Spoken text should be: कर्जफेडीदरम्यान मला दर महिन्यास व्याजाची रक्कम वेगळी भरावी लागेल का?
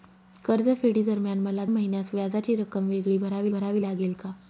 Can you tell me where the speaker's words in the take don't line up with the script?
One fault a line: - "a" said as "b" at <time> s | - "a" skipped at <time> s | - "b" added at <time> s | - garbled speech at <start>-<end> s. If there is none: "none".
- "दर" skipped at 1.6 s
- "भरावी" added at 3.5 s